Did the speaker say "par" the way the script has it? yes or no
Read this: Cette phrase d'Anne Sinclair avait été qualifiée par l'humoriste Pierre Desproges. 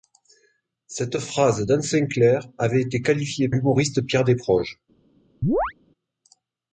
no